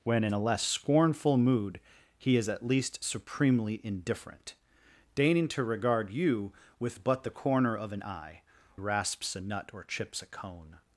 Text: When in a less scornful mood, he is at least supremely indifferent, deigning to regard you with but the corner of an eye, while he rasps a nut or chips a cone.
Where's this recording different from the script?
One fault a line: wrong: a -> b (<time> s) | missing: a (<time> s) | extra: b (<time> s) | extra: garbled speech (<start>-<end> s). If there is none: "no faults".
missing: while he (8.4 s)